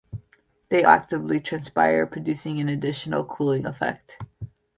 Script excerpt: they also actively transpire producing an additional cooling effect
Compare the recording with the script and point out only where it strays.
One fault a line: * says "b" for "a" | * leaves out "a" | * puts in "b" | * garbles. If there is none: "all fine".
* leaves out "also"